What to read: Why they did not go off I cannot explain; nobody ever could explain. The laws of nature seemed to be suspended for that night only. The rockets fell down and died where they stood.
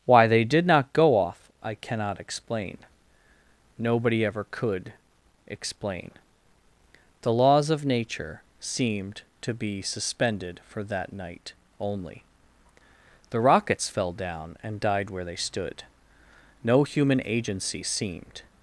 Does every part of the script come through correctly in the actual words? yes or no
no